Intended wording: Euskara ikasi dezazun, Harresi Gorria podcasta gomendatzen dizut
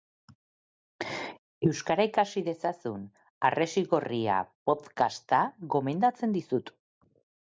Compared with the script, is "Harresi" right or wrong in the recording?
right